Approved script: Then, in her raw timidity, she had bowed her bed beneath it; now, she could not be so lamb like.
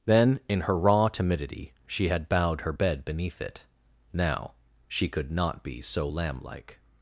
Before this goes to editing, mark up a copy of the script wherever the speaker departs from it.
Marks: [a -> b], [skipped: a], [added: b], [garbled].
Then, in her raw timidity, she had bowed her bed beneath it; now, she could not be so lamb like.